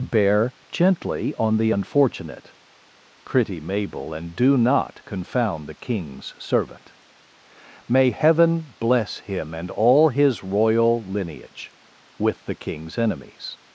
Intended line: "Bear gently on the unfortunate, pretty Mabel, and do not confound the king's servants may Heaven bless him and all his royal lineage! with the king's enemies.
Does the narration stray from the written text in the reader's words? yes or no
yes